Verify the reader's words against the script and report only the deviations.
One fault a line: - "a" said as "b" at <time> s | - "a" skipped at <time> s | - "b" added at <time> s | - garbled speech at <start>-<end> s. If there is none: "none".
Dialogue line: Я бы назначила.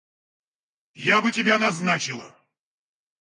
- "тебя" added at 1.3 s